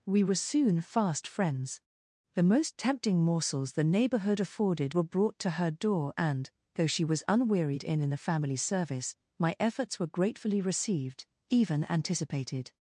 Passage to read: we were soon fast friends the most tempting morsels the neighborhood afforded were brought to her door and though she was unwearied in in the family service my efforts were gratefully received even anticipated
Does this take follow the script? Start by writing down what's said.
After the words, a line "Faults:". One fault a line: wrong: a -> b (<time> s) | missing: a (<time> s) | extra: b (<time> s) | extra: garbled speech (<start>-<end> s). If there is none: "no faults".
we were soon fast friends the most tempting morsels the neighborhood afforded were brought to her door and though she was unwearied in in the family service my efforts were gratefully received even anticipated
Faults:
no faults